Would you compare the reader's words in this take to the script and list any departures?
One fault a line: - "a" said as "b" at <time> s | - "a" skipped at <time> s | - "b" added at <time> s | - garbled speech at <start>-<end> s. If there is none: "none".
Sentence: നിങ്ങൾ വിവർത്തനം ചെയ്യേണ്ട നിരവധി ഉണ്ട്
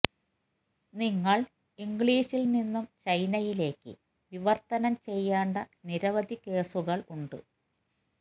- "ഇംഗ്ലീഷിൽ നിന്നും ചൈനയിലേക്ക്" added at 1.8 s
- "കേസുകൾ" added at 6.4 s